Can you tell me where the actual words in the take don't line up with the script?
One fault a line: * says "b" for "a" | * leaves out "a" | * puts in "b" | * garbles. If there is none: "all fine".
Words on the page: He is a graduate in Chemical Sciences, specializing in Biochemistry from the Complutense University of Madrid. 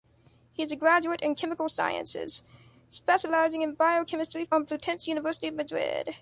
* leaves out "from the"